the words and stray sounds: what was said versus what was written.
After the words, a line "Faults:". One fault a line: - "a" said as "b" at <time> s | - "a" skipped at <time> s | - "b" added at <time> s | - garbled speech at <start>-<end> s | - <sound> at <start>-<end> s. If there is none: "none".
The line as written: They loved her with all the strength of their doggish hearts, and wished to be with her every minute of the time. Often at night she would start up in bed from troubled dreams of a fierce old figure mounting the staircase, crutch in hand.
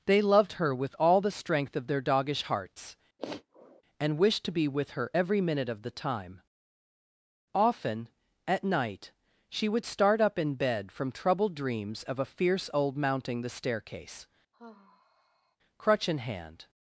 They loved her with all the strength of their doggish hearts, and wished to be with her every minute of the time. Often at night she would start up in bed from troubled dreams of a fierce old mounting the staircase, crutch in hand.
Faults:
- sniff at 3.2-3.8 s
- "figure" skipped at 13.0 s
- sigh at 14.5-15.6 s